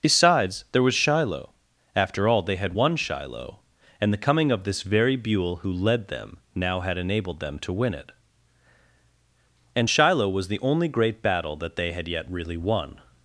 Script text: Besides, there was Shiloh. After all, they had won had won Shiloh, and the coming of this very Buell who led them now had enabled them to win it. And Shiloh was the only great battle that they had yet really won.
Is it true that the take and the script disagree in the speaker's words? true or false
true